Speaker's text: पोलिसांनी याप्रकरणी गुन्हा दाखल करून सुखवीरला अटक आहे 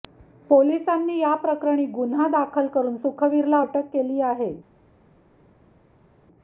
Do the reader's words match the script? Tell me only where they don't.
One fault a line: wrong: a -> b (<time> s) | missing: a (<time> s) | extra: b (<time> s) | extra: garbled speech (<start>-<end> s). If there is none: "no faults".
extra: केली (3.9 s)